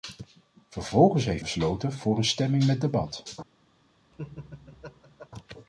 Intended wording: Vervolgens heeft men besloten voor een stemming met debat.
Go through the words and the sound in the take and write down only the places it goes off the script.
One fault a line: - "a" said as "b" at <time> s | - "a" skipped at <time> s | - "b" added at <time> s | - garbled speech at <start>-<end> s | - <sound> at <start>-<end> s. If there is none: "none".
- "men" skipped at 1.4 s
- laugh at 4.1-5.3 s